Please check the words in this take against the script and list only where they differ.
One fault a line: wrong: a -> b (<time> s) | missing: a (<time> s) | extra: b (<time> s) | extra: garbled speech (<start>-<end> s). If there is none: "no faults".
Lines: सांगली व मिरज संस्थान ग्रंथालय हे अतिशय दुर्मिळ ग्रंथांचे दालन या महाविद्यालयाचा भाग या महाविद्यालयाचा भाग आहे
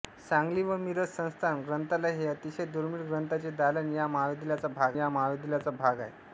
no faults